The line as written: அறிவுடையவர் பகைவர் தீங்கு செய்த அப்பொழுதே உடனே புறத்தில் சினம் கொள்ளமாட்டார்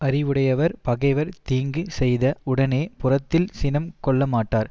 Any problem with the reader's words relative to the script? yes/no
yes